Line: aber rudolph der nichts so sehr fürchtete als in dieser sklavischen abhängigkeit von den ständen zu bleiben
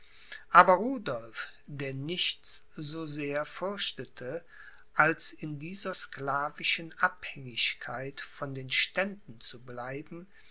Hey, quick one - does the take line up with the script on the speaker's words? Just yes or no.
yes